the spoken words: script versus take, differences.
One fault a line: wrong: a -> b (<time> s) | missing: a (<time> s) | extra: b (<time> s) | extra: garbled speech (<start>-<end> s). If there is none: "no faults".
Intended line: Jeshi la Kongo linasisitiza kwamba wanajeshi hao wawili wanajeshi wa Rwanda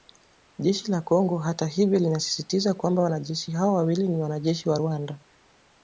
extra: hata hivyo (1.4 s)
extra: ni (4.1 s)